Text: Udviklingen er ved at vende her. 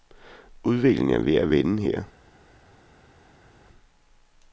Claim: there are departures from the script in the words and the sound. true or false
false